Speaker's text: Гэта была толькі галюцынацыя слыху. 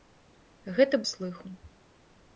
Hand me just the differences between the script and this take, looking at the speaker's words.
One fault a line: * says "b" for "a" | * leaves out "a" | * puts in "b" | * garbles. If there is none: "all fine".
* leaves out "была толькі галюцынацыя"